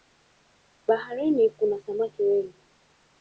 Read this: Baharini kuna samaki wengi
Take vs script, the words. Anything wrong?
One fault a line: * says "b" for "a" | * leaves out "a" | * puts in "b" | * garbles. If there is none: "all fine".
all fine